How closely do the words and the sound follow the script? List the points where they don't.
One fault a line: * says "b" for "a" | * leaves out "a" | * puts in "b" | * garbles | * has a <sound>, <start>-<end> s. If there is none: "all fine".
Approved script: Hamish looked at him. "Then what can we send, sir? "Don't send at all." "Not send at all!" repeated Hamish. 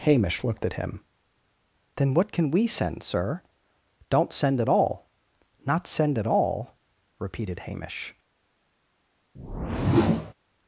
* has a whoosh, 9.3-10.3 s